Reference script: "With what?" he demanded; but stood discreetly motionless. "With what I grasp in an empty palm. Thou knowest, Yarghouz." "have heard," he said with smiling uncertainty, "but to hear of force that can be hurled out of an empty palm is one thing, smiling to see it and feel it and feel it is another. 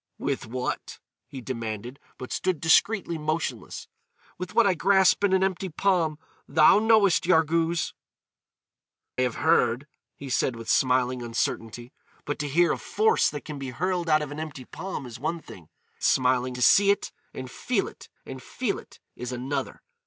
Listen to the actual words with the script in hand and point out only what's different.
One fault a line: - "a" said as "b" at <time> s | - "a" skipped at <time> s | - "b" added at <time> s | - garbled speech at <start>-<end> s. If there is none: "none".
none